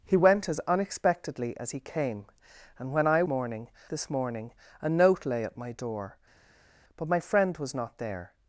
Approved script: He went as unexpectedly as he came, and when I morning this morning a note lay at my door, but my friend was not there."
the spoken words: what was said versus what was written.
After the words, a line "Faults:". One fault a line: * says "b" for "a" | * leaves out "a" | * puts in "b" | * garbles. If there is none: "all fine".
He went as unexpectedly as he came, and when I morning this morning a note lay at my door, but my friend was not there."
Faults:
all fine